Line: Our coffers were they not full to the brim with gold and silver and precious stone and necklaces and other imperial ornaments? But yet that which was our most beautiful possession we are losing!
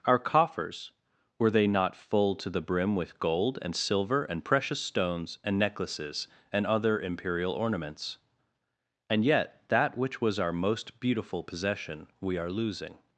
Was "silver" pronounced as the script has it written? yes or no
yes